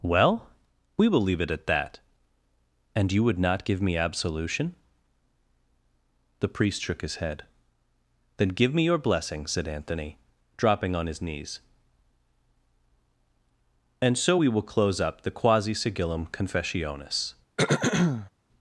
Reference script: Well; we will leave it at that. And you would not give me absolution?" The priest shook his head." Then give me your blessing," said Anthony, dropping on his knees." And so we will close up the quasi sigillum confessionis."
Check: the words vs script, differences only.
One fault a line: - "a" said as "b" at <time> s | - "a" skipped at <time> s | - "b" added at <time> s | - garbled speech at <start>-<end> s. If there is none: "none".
none